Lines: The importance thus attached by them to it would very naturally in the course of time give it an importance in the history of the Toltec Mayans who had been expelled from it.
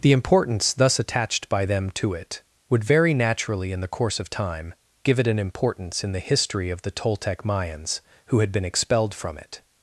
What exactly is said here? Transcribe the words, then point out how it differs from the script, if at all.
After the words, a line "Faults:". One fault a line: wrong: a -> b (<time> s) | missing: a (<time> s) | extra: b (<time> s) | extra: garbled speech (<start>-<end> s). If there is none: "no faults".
The importance thus attached by them to it would very naturally in the course of time give it an importance in the history of the Toltec Mayans who had been expelled from it.
Faults:
no faults